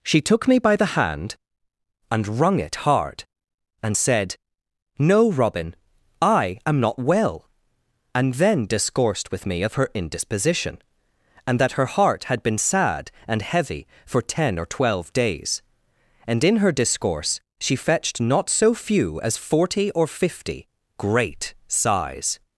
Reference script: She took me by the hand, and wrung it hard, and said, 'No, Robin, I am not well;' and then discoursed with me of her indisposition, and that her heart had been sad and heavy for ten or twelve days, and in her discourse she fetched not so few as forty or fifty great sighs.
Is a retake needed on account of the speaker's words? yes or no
no